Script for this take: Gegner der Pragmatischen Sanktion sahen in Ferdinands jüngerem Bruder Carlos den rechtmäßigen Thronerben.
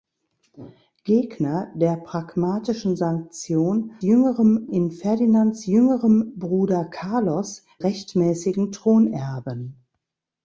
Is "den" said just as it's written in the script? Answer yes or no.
no